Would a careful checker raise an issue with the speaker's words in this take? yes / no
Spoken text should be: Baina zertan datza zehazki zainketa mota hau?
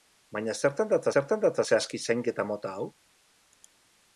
yes